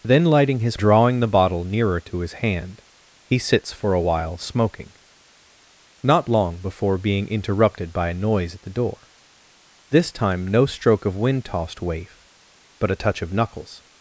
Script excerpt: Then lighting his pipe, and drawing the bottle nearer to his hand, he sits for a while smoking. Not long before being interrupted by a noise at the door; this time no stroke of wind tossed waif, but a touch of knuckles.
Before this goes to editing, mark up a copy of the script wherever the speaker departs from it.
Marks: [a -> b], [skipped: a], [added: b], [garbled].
Then lighting his [skipped: pipe, and] drawing the bottle nearer to his hand, he sits for a while smoking. Not long before being interrupted by a noise at the door; this time no stroke of wind tossed waif, but a touch of knuckles.